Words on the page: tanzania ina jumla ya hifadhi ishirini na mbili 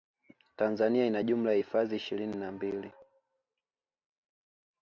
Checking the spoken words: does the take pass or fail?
pass